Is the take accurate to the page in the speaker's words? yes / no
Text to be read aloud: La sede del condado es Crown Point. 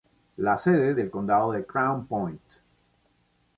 yes